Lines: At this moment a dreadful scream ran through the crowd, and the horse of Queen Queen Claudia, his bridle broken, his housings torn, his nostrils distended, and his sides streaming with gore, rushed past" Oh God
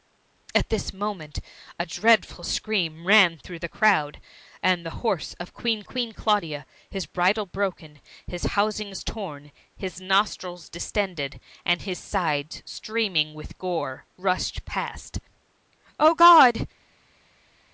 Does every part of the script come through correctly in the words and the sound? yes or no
yes